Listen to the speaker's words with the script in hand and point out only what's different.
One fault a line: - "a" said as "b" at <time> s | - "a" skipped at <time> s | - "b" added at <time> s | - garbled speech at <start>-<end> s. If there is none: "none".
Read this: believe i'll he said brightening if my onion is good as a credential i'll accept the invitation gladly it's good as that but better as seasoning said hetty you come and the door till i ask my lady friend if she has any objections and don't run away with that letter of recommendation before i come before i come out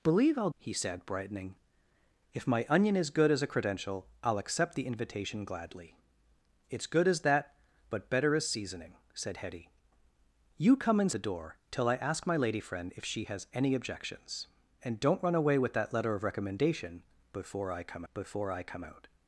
none